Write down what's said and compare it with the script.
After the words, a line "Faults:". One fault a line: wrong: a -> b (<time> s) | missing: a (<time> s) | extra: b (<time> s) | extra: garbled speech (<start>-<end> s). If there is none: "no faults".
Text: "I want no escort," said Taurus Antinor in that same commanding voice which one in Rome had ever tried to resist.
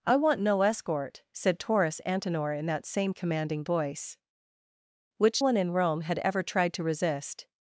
"I want no escort," said Taurus Antinor in that same commanding voice which one in Rome had ever tried to resist.
Faults:
no faults